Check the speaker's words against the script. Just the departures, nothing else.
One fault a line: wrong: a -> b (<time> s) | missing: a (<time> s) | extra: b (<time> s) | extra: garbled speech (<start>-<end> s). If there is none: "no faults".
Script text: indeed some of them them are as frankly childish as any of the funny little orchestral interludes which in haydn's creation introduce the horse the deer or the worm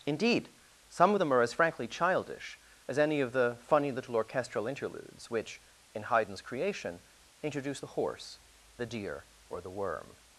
missing: them (1.3 s)